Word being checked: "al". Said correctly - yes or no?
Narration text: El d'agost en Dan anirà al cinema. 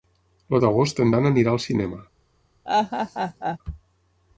yes